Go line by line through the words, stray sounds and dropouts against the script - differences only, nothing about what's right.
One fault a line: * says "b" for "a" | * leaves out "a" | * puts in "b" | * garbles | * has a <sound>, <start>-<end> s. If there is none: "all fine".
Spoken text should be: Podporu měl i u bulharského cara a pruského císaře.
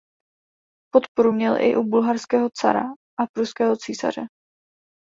all fine